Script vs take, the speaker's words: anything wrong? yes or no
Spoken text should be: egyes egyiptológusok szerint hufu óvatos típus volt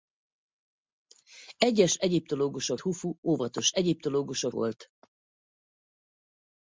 yes